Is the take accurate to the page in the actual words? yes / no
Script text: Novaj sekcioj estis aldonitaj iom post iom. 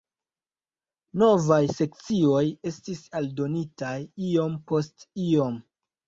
yes